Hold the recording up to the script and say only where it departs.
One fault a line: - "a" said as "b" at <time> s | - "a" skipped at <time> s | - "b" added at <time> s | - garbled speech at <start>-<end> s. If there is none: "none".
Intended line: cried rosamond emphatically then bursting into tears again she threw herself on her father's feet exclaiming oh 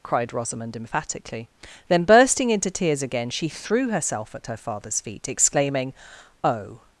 - "on" said as "at" at 4.3 s